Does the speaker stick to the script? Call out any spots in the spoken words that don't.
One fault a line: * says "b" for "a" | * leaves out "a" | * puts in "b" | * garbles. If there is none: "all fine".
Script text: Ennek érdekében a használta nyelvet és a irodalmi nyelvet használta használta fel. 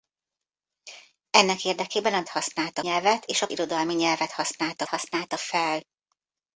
all fine